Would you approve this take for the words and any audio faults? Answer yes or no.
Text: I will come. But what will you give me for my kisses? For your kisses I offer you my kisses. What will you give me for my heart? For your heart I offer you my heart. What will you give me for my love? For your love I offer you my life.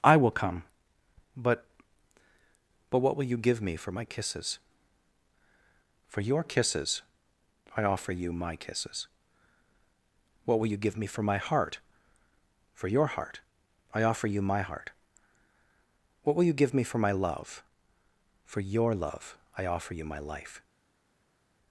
no